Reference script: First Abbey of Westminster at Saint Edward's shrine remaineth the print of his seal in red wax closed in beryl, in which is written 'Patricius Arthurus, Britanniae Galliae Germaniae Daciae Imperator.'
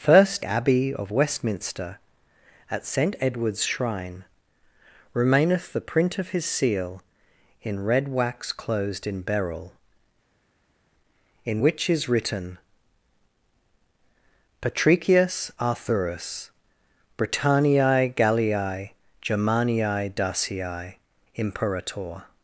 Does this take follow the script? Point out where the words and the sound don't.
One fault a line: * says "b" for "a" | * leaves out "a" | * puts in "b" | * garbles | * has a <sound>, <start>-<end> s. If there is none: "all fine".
all fine